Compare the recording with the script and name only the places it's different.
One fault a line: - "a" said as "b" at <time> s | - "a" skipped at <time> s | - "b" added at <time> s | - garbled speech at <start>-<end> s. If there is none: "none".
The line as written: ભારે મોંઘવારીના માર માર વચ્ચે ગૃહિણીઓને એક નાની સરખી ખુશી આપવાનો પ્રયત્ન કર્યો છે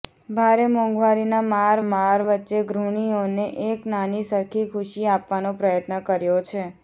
none